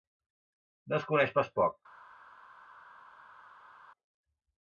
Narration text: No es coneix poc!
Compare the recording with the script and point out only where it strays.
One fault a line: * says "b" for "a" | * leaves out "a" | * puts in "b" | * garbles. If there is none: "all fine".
* puts in "pas"